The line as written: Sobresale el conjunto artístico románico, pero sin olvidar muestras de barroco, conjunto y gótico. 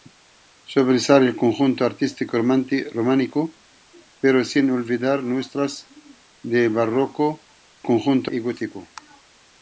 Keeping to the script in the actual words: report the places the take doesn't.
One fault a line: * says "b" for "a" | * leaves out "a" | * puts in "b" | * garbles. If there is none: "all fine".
all fine